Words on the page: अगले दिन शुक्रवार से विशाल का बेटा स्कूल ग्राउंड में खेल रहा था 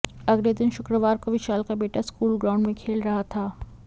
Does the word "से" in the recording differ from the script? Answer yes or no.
yes